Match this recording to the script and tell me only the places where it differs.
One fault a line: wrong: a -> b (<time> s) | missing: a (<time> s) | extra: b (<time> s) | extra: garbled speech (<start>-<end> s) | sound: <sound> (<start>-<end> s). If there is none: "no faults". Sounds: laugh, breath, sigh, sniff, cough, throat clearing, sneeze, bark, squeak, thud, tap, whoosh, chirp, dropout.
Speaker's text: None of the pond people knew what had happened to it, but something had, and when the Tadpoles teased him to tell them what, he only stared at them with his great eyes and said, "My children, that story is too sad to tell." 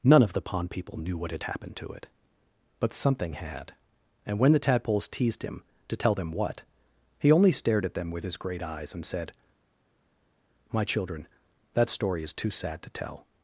no faults